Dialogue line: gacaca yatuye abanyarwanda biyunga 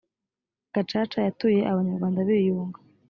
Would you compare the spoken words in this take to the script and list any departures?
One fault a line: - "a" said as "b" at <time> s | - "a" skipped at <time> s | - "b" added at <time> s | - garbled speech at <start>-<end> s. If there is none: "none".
none